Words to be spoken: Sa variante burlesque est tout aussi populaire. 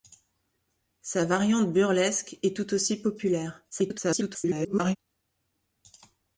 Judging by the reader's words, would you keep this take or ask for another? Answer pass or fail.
fail